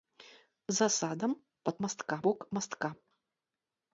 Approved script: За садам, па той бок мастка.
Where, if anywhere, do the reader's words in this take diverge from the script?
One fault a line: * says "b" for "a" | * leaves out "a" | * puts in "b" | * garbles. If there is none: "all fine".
* says "мастка" for "той"